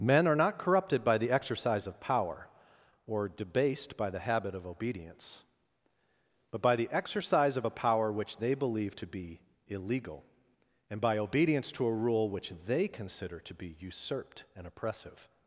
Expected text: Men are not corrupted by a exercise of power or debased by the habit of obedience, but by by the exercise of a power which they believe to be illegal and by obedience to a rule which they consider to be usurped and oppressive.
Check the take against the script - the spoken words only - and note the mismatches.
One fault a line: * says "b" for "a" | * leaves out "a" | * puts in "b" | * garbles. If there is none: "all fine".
* says "the" for "a"
* leaves out "by"